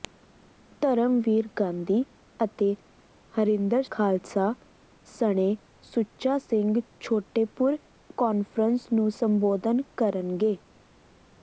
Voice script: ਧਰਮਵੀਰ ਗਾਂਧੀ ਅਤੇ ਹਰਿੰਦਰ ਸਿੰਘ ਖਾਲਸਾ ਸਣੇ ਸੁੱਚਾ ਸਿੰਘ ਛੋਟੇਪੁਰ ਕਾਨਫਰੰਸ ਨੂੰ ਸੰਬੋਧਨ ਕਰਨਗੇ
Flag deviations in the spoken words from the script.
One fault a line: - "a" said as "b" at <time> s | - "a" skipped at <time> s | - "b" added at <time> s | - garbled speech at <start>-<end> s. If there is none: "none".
- "ਸਿੰਘ" skipped at 3.8 s